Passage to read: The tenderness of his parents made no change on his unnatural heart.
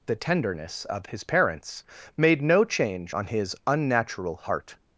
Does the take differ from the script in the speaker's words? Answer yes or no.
no